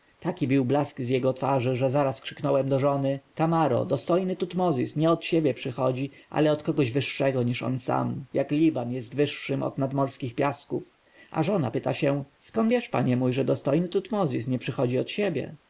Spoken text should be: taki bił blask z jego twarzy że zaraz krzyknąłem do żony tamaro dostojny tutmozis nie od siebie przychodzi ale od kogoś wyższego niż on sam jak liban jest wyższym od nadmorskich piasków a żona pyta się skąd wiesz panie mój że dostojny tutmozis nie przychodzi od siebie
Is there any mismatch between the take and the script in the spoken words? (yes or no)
no